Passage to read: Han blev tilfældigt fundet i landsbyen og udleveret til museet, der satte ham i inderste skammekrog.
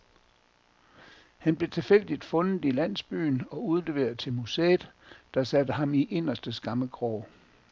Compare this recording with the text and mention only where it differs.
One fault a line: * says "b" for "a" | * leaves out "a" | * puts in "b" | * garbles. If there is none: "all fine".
all fine